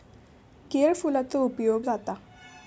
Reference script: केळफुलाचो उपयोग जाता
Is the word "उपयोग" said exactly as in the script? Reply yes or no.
yes